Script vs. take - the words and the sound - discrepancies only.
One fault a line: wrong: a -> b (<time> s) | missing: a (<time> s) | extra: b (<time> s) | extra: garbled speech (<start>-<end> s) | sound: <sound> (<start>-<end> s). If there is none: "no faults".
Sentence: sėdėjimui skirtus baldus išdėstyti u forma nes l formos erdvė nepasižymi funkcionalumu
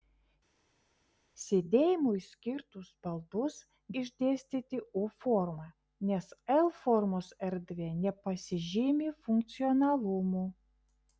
no faults